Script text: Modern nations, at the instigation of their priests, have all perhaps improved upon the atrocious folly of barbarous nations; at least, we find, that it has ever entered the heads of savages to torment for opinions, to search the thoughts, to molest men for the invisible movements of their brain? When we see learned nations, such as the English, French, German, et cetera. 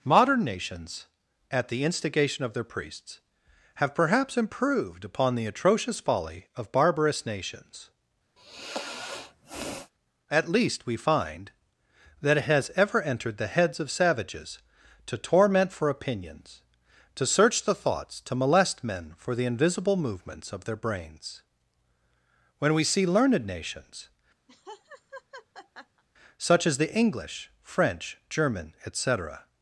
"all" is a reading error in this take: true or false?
true